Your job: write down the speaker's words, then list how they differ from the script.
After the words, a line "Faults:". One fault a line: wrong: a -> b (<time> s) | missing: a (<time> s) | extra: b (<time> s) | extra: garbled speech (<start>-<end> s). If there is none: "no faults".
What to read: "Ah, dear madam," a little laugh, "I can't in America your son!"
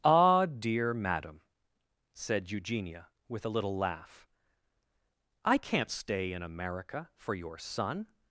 "Ah, dear madam," said Eugenia, with a little laugh, "I can't stay in America for your son!"
Faults:
extra: said Eugenia with (2.1 s)
extra: stay (5.9 s)
extra: for (7.2 s)